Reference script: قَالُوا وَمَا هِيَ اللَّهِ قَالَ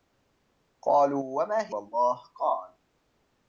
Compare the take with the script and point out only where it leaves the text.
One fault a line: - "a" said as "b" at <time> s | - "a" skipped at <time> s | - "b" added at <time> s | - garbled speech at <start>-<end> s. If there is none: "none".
none